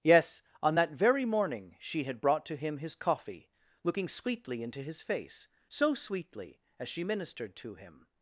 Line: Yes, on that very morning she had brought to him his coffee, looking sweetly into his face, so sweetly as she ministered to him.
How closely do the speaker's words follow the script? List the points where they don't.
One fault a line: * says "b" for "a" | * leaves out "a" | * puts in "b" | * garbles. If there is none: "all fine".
all fine